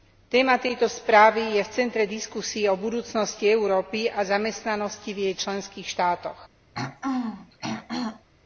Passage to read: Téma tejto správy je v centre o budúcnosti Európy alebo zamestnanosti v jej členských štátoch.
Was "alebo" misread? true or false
true